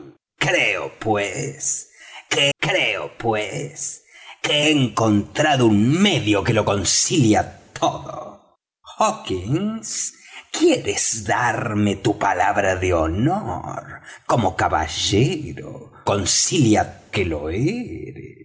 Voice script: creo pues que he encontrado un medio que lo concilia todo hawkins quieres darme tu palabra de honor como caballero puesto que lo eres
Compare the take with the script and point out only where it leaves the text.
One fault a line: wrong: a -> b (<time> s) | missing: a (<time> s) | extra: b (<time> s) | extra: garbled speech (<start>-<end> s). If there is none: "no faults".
extra: creo pues que (2.6 s)
wrong: puesto -> concilia (16.0 s)